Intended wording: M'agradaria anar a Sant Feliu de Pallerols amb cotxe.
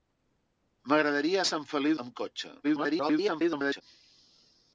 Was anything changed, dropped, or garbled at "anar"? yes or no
yes